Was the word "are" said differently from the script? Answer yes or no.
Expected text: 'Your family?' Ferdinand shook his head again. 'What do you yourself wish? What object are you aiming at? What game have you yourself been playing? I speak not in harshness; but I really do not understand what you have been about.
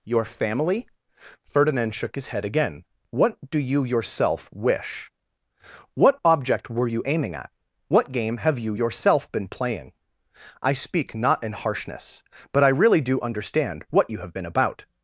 yes